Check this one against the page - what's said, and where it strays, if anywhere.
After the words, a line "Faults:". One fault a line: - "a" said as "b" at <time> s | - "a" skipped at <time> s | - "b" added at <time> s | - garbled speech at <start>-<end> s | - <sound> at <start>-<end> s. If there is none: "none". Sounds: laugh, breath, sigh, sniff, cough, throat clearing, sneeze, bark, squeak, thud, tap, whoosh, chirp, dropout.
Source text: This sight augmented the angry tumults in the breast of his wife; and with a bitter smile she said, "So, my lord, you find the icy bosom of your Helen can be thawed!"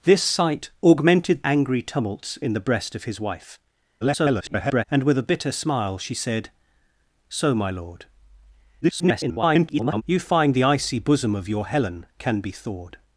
This sight augmented angry tumults in the breast of his wife; [garbled] and with a bitter smile she said, "So, my lord, [garbled] you find the icy bosom of your Helen can be thawed!"
Faults:
- "the" skipped at 1.4 s
- garbled speech at 4.0-4.8 s
- garbled speech at 8.8-10.0 s